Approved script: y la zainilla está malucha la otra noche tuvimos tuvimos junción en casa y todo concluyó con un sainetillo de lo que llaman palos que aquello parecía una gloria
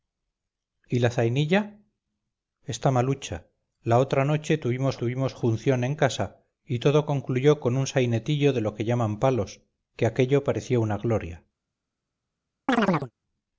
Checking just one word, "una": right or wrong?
right